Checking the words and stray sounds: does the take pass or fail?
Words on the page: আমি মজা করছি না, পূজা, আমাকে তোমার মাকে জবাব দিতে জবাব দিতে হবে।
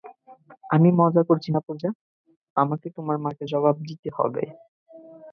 fail